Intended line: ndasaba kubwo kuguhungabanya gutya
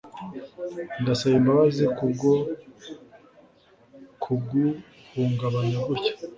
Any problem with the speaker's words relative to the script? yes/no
yes